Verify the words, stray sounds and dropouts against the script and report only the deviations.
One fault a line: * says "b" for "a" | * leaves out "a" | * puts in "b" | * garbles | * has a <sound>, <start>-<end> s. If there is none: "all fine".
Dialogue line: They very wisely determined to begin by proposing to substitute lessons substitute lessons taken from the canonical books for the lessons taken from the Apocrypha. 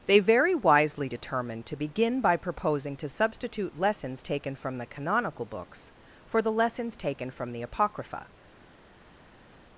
* leaves out "substitute lessons"